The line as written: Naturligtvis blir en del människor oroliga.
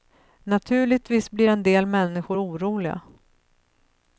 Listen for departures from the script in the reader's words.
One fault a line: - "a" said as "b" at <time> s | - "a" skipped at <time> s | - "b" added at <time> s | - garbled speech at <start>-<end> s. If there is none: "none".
none